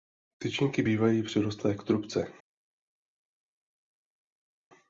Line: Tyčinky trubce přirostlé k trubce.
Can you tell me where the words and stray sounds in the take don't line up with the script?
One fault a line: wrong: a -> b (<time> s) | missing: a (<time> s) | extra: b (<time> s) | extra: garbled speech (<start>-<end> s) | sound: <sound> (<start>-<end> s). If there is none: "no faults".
wrong: trubce -> bývají (0.8 s)